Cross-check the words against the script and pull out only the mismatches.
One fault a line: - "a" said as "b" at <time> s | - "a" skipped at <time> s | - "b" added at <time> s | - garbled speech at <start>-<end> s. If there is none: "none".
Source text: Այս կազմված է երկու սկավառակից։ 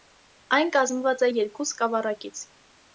- "Այս" said as "Այն" at 0.6 s